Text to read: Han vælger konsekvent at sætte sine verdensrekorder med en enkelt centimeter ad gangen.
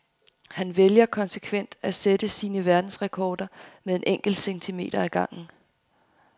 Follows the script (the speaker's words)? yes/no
yes